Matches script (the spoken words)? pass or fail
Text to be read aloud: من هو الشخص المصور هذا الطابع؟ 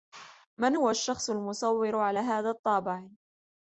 fail